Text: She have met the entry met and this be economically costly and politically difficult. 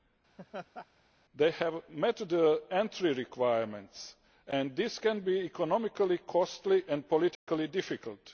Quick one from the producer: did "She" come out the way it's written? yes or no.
no